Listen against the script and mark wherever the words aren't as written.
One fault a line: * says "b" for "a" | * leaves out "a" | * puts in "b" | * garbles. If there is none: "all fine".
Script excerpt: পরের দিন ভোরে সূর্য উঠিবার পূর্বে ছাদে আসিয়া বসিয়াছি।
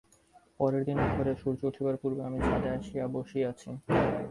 * puts in "আমি"